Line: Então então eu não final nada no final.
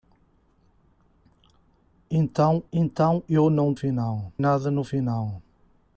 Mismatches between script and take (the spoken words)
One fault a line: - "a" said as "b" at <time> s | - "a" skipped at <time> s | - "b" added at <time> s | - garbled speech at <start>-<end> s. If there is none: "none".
none